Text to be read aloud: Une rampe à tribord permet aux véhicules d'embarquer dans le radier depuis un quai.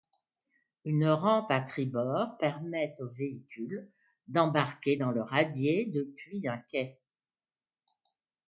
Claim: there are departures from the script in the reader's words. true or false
false